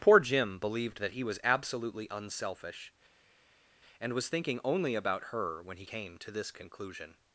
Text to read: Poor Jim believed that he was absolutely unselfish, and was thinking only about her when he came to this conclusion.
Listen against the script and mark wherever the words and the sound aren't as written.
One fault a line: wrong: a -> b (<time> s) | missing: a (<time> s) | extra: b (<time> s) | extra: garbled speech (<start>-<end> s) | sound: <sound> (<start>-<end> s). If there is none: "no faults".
no faults